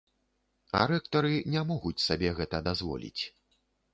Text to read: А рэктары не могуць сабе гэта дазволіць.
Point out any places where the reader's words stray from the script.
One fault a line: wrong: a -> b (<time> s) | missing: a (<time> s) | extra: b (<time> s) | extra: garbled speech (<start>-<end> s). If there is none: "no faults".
no faults